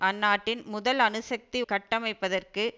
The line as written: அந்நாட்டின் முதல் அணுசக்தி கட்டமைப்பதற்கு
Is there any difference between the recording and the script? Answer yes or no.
no